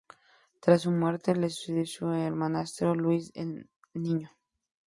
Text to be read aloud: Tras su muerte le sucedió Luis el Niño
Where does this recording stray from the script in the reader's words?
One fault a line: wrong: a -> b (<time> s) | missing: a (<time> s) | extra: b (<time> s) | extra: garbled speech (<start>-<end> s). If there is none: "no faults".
extra: su hermanastro (1.9 s)